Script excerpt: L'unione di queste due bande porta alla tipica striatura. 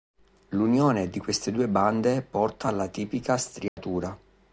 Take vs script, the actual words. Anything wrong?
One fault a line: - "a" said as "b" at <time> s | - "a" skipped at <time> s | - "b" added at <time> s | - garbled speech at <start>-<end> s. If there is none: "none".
none